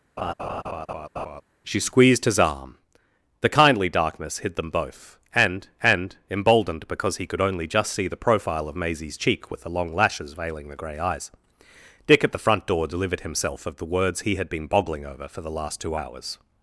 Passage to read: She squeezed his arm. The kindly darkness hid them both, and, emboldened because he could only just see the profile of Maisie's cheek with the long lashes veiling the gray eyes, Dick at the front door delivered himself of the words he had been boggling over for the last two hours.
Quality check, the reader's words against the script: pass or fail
fail